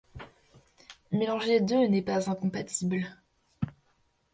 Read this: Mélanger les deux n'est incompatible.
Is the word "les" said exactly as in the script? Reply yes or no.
yes